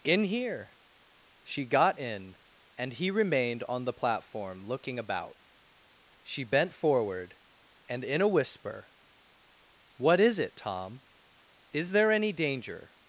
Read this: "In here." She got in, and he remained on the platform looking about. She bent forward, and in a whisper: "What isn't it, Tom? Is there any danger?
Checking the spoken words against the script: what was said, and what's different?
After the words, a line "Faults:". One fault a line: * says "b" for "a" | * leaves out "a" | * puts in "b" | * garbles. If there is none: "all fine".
"In here." She got in, and he remained on the platform looking about. She bent forward, and in a whisper: "What is it, Tom? Is there any danger?
Faults:
* says "is" for "isn't"